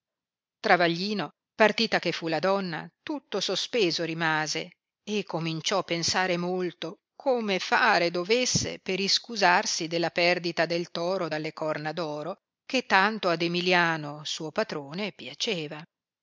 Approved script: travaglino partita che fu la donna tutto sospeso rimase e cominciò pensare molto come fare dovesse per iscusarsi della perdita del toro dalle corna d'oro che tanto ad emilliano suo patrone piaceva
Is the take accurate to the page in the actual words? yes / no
yes